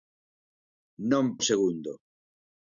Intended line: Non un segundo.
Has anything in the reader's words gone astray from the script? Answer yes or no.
no